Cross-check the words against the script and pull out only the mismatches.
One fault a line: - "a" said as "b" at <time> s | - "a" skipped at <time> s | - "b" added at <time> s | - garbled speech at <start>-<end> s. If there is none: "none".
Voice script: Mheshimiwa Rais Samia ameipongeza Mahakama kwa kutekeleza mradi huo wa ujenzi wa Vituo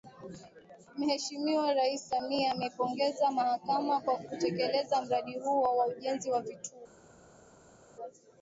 none